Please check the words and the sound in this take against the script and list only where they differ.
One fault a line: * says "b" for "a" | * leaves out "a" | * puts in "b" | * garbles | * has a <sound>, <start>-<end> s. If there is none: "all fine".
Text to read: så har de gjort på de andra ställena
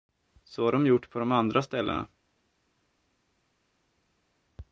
all fine